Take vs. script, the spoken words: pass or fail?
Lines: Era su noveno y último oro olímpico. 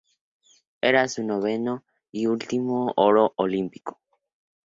pass